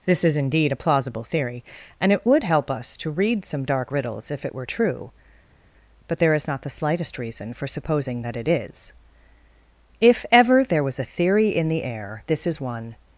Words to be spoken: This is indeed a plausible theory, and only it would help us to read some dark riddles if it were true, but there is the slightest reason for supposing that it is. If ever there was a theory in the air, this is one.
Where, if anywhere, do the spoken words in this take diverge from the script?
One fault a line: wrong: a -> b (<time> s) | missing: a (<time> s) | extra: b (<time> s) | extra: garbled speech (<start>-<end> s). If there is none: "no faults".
missing: only (2.1 s)
extra: not (6.5 s)